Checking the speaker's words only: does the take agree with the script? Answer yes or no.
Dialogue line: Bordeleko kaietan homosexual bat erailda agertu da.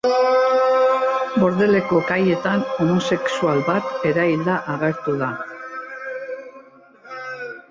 yes